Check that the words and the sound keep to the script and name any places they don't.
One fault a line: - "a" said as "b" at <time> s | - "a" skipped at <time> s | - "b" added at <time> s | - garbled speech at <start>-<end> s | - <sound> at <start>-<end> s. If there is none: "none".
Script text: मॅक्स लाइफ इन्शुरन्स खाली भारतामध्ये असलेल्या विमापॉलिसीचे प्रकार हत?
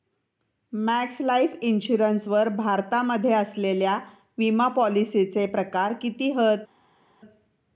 - "खाली" said as "वर" at 2.3 s
- "किती" added at 6.0 s